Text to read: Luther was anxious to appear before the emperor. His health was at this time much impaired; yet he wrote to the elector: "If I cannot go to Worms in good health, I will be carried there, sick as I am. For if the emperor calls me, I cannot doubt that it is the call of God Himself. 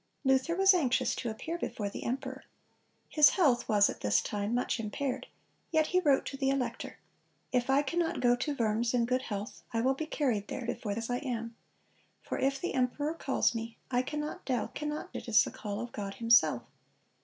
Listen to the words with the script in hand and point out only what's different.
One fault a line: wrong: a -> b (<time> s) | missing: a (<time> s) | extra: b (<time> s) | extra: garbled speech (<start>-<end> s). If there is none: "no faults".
wrong: sick -> before (10.6 s)
wrong: that -> cannot (14.7 s)